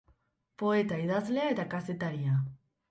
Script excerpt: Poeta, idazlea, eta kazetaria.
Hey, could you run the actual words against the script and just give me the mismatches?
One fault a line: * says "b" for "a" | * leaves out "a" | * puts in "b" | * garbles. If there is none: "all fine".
all fine